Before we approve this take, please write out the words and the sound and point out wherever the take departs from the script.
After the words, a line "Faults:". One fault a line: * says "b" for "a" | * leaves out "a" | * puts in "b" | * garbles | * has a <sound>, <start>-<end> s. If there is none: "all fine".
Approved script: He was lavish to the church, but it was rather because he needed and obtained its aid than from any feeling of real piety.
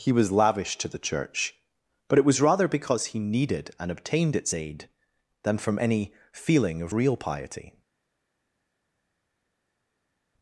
He was lavish to the church, but it was rather because he needed and obtained its aid than from any feeling of real piety.
Faults:
all fine